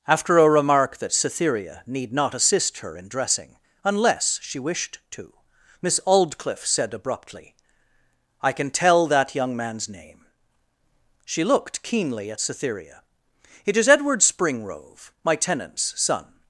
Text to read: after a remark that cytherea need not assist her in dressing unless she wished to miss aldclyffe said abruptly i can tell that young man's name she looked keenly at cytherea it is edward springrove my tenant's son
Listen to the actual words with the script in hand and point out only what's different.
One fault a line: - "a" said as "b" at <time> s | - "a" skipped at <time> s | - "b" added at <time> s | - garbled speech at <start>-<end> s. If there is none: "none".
none